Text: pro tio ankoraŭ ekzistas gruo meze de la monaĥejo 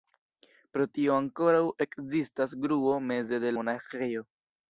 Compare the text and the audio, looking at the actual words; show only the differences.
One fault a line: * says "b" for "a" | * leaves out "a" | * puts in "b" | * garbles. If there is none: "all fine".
* leaves out "la"